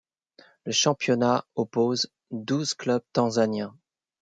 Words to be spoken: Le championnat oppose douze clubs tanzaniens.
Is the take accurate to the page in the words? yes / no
yes